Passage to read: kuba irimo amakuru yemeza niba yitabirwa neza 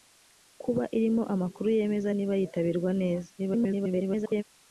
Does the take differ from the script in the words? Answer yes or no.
yes